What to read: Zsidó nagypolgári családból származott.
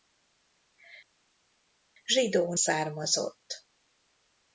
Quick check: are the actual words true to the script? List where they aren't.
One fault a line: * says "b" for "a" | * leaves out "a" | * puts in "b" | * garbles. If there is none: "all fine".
* leaves out "nagypolgári családból"